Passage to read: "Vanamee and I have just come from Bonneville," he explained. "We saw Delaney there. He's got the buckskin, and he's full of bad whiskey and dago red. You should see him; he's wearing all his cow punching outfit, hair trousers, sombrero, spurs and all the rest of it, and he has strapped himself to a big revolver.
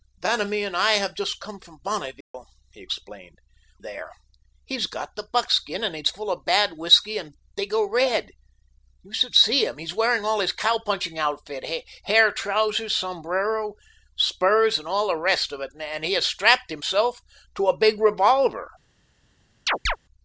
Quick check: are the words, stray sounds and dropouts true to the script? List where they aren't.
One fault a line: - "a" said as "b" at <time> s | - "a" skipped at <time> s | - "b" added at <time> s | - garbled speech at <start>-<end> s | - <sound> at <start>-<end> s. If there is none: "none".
- dropout at 2.2-2.3 s
- "We saw Delaney" skipped at 3.4 s
- chirp at 19.7-20.0 s